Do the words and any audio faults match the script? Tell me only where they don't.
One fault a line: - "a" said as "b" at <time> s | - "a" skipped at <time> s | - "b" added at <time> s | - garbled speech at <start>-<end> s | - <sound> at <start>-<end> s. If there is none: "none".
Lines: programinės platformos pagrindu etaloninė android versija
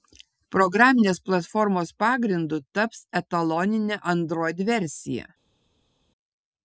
- "taps" added at 2.8 s